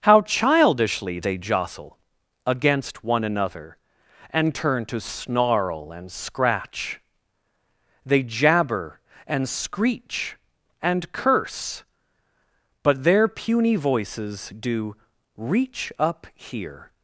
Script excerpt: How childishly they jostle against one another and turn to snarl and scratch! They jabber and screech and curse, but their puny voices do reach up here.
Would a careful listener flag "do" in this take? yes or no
no